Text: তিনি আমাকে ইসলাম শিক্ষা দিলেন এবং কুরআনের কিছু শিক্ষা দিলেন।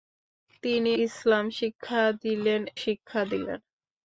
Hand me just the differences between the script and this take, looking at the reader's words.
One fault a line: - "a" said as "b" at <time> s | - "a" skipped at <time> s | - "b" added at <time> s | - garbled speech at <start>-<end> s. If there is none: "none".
- "আমাকে" skipped at 0.9 s
- "এবং কুরআনের কিছু" skipped at 2.6 s